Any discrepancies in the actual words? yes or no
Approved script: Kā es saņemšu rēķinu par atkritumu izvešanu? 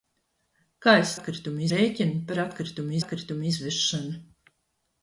yes